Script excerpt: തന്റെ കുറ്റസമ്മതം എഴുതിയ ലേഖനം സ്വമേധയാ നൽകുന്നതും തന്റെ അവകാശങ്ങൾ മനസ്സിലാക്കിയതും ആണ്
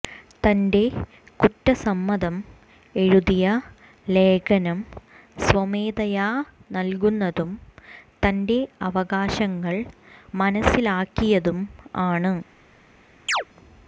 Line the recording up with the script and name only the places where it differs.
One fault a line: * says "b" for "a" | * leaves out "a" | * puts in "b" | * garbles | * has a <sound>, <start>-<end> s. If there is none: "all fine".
* has a chirp, 13.3-13.4 s